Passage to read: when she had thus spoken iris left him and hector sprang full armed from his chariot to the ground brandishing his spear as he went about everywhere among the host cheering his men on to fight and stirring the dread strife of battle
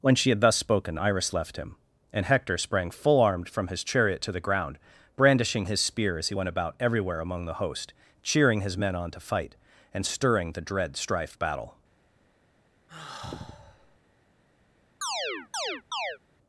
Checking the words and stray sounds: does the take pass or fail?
fail